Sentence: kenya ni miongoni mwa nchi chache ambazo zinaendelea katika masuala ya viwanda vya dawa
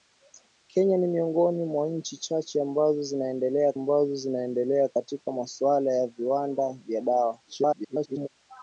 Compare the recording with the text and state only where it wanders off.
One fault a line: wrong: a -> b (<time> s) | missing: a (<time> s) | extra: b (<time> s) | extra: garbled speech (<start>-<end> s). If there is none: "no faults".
extra: ambazo zinaendelea (3.7 s)
extra: garbled speech (7.5-8.3 s)